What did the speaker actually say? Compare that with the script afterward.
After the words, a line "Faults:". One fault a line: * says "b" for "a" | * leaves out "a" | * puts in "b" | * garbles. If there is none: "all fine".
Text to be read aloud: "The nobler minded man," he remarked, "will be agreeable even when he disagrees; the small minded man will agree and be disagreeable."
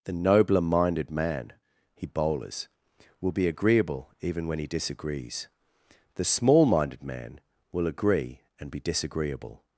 "The nobler minded man," he bowlers, "will be agreeable even when he disagrees; the small minded man will agree and be disagreeable."
Faults:
* says "bowlers" for "remarked"